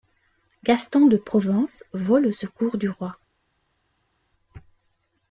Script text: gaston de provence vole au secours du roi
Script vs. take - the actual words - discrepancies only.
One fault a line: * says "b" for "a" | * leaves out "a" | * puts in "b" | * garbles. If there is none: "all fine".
all fine